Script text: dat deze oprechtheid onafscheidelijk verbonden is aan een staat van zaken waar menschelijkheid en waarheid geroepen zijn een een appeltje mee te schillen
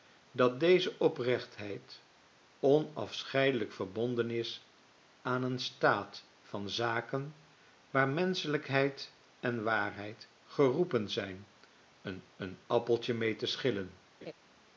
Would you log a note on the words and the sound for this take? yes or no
yes